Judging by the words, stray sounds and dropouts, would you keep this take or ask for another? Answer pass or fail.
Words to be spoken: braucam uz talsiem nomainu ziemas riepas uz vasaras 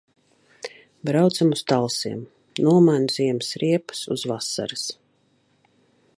pass